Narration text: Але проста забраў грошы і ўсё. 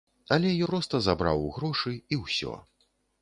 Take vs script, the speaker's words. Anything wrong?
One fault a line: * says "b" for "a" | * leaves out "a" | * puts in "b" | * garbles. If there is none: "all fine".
all fine